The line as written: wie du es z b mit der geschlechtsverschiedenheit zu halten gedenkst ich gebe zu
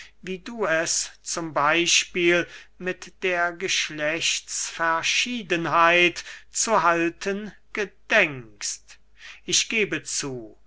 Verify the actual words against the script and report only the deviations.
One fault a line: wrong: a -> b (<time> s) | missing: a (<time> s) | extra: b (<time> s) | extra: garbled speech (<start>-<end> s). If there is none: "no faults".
no faults